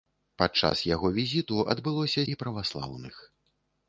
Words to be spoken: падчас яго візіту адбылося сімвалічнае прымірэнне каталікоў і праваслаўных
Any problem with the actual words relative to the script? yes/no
yes